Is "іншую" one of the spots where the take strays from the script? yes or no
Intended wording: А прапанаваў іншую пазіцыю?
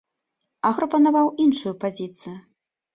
no